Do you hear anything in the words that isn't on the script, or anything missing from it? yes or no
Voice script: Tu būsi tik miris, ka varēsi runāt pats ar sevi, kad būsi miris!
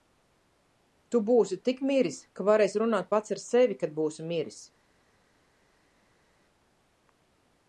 no